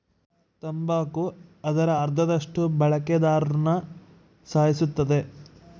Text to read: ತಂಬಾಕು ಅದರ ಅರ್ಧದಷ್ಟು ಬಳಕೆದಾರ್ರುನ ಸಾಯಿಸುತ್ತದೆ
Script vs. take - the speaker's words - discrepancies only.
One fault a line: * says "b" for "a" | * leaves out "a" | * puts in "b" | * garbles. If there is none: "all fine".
all fine